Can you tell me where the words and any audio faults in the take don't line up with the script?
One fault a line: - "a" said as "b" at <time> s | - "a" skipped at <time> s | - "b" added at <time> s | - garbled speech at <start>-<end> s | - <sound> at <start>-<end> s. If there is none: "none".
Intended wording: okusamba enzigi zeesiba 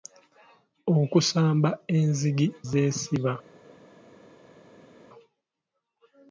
none